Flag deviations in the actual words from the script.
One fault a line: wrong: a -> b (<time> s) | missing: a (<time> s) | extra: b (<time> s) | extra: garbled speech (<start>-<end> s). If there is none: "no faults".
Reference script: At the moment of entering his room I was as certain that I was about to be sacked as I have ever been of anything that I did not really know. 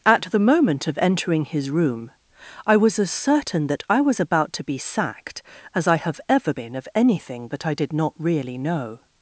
no faults